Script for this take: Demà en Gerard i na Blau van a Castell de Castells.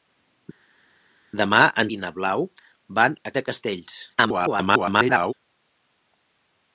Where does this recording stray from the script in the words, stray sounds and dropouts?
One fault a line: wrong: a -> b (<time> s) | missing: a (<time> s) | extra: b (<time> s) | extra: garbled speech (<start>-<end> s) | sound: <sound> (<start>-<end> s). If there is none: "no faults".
missing: Gerard (1.9 s)
missing: Castell (3.3 s)
extra: garbled speech (4.1-5.3 s)